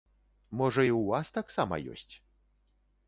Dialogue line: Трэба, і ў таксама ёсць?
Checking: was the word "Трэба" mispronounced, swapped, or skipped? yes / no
yes